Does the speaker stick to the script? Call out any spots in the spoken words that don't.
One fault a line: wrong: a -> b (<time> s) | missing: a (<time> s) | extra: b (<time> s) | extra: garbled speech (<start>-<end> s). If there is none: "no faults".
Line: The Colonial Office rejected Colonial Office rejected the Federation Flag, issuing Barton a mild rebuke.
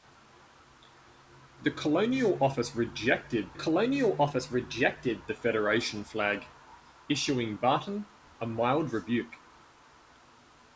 no faults